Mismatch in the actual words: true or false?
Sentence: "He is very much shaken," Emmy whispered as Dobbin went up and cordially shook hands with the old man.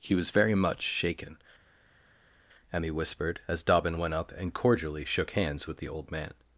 true